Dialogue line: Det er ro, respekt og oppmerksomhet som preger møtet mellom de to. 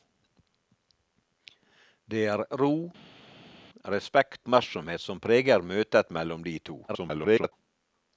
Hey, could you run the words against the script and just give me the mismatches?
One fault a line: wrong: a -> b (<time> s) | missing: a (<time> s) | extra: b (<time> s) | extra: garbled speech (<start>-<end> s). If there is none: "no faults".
missing: og (4.5 s)
extra: garbled speech (6.9-7.5 s)